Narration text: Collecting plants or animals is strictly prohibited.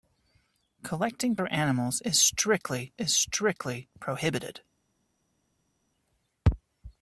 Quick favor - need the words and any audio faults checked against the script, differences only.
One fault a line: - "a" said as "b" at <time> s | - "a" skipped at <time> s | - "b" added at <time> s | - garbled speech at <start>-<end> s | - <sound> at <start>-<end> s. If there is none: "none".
- "plants" skipped at 1.4 s
- "is strictly" added at 3.0 s